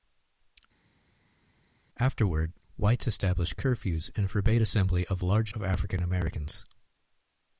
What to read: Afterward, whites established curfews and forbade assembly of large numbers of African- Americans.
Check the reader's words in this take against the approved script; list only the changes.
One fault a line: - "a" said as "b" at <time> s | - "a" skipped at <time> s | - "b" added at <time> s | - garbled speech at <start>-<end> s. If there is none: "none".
- "numbers" skipped at 5.5 s